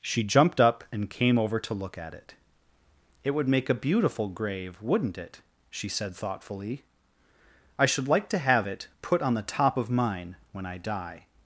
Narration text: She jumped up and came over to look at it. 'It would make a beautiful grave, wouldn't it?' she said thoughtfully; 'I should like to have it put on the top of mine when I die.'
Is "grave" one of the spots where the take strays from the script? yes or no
no